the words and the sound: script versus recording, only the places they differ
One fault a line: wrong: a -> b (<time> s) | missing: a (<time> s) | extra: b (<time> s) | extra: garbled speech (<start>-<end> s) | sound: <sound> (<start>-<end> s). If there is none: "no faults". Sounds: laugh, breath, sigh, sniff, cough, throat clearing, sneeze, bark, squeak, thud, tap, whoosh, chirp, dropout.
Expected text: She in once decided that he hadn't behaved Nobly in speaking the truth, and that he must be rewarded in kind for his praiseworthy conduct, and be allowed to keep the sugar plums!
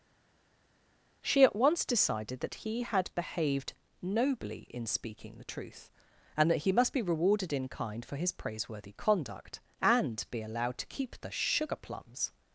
wrong: in -> at (1.4 s)
wrong: hadn't -> had (2.8 s)